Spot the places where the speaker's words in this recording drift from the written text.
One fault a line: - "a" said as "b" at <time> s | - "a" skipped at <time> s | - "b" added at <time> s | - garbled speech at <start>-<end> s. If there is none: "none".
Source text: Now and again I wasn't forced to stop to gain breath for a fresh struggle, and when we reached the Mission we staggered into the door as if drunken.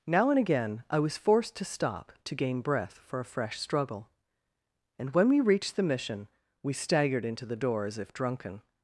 - "wasn't" said as "was" at 1.0 s